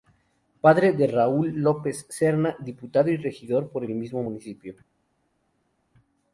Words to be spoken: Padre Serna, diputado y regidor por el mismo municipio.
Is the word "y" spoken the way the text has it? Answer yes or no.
yes